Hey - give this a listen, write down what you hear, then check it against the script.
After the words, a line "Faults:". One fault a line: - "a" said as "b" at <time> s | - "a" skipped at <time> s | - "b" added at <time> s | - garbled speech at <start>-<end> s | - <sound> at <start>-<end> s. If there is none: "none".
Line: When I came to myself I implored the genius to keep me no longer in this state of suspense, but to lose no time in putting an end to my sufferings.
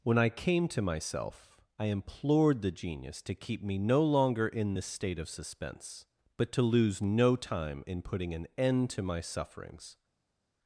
When I came to myself I implored the genius to keep me no longer in this state of suspense, but to lose no time in putting an end to my sufferings.
Faults:
none